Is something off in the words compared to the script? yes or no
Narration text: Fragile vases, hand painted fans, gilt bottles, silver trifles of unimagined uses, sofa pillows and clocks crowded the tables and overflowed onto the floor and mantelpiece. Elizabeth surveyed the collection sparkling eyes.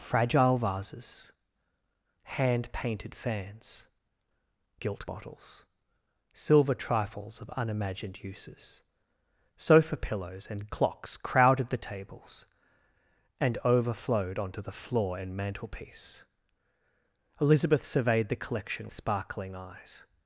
no